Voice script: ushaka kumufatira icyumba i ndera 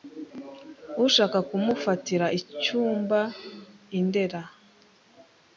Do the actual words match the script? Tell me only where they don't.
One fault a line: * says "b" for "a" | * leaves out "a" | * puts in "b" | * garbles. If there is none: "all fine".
all fine